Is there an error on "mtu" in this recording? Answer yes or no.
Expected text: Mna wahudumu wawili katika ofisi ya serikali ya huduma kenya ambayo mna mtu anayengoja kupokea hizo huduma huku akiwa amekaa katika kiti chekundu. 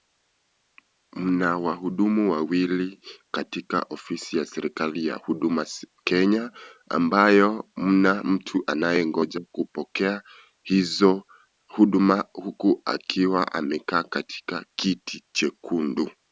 no